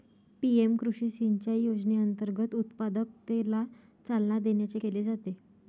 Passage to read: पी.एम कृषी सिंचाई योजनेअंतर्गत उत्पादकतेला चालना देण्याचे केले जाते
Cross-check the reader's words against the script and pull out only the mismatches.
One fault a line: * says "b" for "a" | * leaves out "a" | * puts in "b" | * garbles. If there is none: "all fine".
all fine